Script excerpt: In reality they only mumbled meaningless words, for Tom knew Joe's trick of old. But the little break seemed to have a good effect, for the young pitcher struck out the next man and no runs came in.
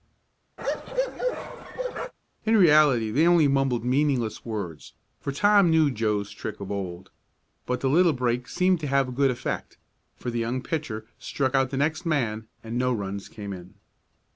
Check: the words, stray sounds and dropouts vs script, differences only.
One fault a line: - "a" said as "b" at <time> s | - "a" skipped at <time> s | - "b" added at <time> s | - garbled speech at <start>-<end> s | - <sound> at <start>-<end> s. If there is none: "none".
- bark at 0.6-2.1 s